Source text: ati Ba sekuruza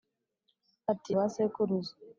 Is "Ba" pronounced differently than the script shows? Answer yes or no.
no